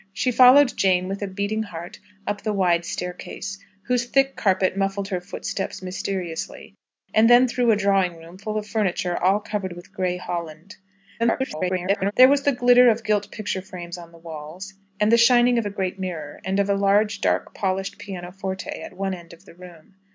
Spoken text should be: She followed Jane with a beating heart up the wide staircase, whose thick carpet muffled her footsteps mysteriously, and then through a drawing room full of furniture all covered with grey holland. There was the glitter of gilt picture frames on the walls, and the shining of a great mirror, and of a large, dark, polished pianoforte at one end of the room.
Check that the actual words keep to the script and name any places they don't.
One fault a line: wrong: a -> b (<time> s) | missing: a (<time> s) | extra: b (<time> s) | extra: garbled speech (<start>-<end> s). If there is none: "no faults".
extra: garbled speech (11.2-12.1 s)